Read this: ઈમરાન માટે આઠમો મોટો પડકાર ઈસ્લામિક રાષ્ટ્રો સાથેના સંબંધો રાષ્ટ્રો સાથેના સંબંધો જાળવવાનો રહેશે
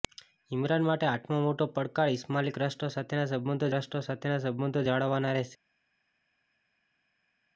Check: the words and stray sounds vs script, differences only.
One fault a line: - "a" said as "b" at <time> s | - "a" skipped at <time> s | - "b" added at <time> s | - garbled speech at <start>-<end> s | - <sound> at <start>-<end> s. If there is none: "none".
none